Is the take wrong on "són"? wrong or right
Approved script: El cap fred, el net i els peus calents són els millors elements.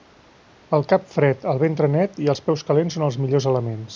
right